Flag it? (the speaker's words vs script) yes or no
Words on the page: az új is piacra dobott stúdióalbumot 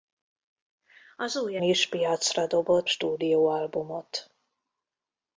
no